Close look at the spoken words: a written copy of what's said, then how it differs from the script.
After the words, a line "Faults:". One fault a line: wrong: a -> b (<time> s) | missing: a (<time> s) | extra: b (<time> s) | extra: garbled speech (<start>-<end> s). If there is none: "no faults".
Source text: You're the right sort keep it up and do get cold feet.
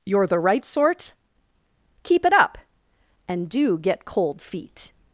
You're the right sort keep it up and do get cold feet.
Faults:
no faults